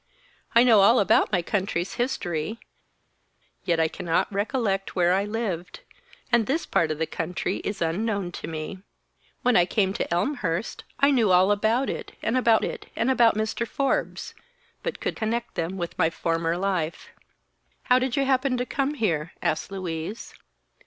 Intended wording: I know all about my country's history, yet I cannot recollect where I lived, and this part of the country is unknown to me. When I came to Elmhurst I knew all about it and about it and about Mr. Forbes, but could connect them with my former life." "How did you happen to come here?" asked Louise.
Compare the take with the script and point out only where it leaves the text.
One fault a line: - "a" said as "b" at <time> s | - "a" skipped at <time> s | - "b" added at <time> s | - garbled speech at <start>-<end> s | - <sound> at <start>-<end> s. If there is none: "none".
none